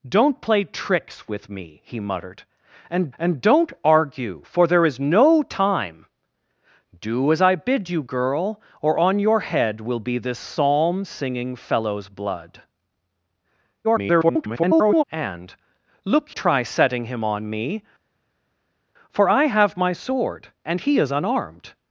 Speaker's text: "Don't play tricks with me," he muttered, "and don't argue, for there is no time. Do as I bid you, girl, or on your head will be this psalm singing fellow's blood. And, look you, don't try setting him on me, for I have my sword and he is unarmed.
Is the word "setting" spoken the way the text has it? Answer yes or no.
yes